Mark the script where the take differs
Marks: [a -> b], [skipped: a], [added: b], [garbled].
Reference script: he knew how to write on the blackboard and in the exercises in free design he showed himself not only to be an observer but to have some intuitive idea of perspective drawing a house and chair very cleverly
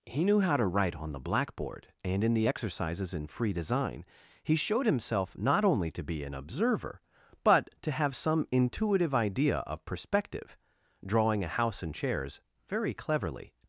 he knew how to write on the blackboard and in the exercises in free design he showed himself not only to be an observer but to have some intuitive idea of perspective drawing a house and [chair -> chairs] very cleverly